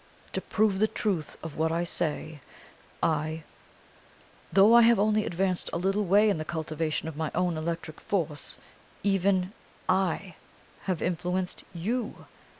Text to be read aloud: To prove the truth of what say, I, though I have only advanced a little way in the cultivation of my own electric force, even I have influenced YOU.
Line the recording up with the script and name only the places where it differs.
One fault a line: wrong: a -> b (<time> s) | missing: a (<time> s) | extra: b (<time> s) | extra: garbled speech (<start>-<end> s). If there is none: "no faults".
extra: I (1.7 s)